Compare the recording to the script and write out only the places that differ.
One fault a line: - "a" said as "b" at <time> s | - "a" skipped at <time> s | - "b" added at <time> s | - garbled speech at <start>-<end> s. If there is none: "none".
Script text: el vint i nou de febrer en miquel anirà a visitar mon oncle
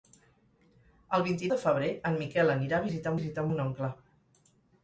- "nou" skipped at 1.5 s
- "visitar" added at 3.2 s